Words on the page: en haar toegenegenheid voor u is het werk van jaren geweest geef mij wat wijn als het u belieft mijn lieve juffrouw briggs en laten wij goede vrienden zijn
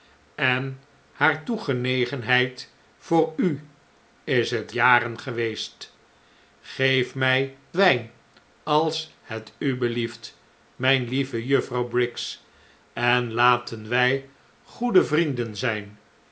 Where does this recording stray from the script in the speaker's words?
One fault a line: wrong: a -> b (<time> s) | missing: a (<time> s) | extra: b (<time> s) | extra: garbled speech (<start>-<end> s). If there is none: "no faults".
missing: werk van (4.7 s)
missing: wat (7.6 s)